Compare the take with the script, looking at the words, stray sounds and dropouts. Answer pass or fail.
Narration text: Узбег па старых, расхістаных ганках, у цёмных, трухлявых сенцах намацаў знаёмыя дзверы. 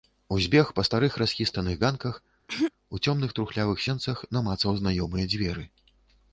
fail